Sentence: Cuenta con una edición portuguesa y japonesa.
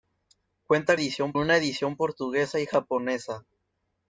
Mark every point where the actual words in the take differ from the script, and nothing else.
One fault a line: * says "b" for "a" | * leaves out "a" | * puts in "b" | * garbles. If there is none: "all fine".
* says "edición" for "con"